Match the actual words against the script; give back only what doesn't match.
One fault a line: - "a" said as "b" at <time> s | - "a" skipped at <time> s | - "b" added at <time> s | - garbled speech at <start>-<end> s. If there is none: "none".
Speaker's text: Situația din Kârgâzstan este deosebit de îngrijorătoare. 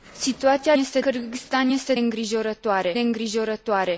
- "din" said as "este" at 0.7 s
- "deosebit" said as "îngrijorătoare" at 2.0 s